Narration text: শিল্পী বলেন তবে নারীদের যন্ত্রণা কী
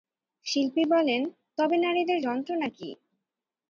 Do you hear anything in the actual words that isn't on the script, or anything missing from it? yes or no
no